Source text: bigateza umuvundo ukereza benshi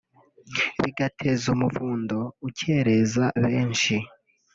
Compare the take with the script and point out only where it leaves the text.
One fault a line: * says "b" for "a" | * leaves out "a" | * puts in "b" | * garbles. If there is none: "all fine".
all fine